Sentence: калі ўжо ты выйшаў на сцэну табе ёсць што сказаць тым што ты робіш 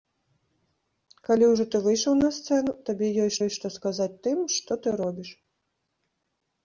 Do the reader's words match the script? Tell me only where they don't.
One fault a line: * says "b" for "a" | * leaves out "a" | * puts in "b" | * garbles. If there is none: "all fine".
* puts in "ёсць"